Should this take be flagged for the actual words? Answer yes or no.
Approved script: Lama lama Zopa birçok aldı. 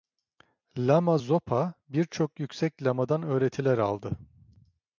yes